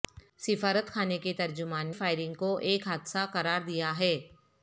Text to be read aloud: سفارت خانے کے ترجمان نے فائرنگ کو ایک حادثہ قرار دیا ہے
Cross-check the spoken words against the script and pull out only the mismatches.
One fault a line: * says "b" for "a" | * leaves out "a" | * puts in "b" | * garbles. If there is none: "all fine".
* leaves out "نے"